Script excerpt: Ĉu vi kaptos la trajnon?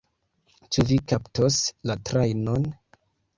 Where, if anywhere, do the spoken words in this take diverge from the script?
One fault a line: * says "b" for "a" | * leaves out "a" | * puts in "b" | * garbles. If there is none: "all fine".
all fine